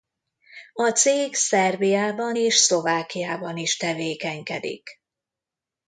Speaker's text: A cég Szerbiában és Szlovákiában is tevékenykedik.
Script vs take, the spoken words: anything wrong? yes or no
no